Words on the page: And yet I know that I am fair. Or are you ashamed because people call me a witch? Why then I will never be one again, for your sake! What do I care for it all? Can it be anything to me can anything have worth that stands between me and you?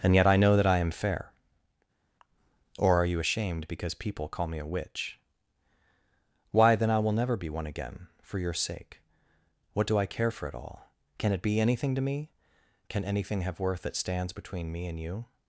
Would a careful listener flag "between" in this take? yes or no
no